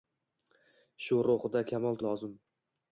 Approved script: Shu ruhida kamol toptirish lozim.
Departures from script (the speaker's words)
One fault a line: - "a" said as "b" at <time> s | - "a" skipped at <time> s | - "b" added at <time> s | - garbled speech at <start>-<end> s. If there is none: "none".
- "toptirish" skipped at 2.0 s